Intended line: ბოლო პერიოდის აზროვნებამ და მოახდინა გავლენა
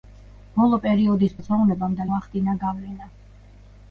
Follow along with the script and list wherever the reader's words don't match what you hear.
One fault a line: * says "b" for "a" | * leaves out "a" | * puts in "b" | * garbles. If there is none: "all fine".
all fine